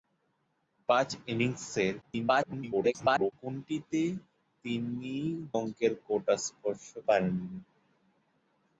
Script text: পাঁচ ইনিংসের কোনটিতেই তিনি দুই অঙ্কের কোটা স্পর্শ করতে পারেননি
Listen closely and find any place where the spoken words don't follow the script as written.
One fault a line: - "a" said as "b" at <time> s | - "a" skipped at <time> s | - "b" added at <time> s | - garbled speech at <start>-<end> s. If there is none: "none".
- garbled speech at 2.0-3.3 s
- "দুই" skipped at 5.2 s
- "করতে" skipped at 6.9 s